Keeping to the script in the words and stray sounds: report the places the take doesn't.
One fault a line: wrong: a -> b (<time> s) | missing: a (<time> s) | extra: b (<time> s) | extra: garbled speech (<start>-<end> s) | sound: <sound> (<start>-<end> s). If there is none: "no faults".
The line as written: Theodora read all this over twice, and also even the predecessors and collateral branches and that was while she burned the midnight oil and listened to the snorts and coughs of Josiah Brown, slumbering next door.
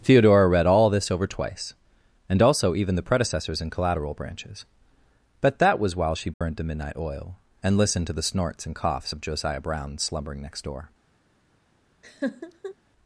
wrong: and -> but (5.4 s)
sound: dropout (6.3-6.4 s)
sound: laugh (12.0-12.8 s)